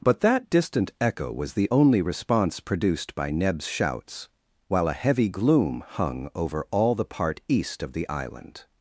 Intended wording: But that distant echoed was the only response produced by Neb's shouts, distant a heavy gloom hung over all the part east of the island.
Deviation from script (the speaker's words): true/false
true